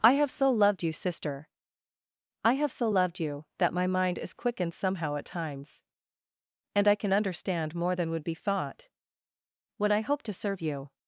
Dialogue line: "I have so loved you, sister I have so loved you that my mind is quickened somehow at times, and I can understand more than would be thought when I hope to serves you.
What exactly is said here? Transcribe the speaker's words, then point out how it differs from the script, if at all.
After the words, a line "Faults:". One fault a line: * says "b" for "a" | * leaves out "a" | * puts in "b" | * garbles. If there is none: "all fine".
"I have so loved you, sister I have so loved you that my mind is quickened somehow at times, and I can understand more than would be thought when I hope to serve you.
Faults:
* says "serve" for "serves"